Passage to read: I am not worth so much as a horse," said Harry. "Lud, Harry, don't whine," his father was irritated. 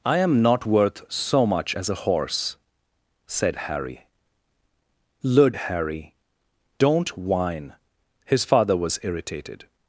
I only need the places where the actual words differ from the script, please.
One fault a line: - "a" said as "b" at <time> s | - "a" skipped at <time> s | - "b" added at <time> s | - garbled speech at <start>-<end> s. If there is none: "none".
none